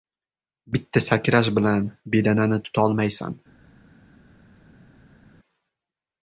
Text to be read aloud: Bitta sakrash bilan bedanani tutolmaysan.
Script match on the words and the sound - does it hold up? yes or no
yes